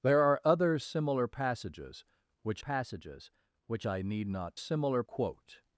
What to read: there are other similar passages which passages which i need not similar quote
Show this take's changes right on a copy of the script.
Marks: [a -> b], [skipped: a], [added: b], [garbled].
there are other similar passages which passages which i need not similar quote